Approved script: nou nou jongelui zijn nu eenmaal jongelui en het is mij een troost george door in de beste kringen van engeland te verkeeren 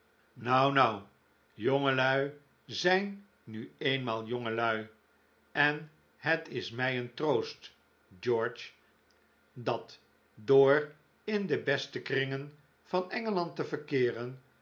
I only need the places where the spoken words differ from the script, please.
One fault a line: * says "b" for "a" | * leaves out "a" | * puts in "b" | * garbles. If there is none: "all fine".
* puts in "dat"